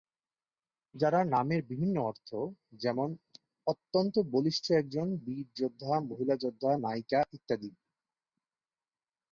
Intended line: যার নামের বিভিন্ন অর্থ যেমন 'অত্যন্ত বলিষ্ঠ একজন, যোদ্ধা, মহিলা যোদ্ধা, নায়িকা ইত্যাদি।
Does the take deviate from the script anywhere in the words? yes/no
yes